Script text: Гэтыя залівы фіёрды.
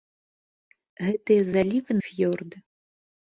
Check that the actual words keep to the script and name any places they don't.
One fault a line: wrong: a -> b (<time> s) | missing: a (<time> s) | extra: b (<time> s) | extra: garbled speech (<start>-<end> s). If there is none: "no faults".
no faults